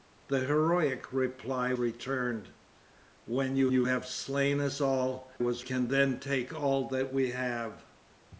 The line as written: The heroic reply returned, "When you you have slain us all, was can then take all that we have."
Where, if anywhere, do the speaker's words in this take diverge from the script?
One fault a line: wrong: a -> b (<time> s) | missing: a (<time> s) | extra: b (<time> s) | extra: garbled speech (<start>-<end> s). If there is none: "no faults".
no faults